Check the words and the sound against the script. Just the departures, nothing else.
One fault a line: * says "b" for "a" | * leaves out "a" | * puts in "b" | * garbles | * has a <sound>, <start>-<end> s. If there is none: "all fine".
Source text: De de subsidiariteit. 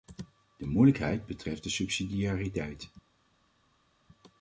* puts in "moeilijkheid betreft"